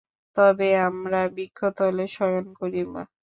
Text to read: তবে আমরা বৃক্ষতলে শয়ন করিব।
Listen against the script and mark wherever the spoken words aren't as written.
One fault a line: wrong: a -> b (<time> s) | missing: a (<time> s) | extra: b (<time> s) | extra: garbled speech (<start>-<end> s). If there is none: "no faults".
no faults